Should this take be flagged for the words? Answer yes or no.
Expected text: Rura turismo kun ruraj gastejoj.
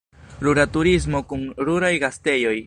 no